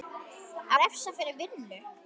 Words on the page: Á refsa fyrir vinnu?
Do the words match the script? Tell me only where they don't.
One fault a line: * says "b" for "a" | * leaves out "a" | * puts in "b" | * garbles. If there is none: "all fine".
all fine